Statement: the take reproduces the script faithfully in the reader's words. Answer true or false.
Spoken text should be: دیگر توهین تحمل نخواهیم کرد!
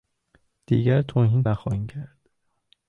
false